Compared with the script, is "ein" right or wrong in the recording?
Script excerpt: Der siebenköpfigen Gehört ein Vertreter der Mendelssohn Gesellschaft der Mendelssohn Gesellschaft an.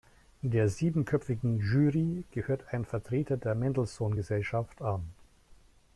right